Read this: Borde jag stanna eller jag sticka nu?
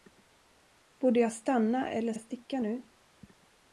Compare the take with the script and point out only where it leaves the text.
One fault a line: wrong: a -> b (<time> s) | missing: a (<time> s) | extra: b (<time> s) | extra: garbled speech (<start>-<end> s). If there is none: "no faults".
no faults